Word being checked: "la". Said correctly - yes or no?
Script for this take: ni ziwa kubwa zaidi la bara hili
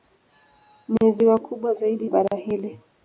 no